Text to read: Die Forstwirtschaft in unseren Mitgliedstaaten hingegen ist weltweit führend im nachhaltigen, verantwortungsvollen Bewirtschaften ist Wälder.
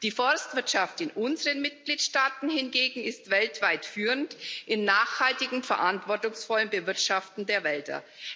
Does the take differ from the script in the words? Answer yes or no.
yes